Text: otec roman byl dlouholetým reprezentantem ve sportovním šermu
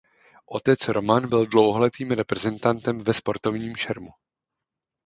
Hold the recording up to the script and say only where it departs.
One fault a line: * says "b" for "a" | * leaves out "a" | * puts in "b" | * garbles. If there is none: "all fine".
all fine